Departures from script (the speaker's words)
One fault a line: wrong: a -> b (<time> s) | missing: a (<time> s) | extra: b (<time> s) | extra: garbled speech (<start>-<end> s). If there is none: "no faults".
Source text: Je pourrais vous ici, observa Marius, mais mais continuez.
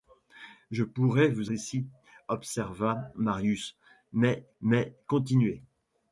no faults